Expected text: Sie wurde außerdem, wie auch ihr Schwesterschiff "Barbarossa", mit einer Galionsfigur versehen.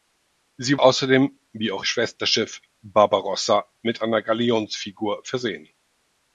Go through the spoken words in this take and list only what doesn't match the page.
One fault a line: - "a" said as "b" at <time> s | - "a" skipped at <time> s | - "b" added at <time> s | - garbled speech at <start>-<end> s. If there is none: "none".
- "wurde" skipped at 0.8 s
- "ihr" skipped at 1.9 s